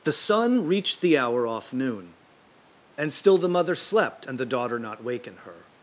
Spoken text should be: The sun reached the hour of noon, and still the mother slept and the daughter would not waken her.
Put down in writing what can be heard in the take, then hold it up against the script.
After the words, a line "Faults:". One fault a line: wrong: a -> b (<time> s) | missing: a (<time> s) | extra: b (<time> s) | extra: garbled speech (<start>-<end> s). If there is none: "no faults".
The sun reached the hour off noon, and still the mother slept and the daughter not waken her.
Faults:
wrong: of -> off (1.4 s)
missing: would (4.8 s)